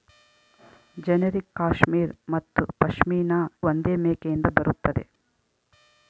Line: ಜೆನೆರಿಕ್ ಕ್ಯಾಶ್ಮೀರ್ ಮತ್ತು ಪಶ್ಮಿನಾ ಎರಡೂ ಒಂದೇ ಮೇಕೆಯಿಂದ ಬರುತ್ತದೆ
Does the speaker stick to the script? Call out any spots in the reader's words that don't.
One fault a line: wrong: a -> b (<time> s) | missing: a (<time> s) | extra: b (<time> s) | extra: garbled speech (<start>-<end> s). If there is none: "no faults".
missing: ಎರಡೂ (3.4 s)